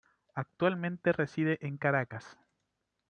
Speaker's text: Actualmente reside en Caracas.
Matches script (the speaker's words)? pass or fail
pass